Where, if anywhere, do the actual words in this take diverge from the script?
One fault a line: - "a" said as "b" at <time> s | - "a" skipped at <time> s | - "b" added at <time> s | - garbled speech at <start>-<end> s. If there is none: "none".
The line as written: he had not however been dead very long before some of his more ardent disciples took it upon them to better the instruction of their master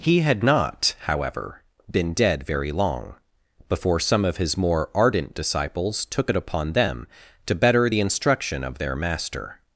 none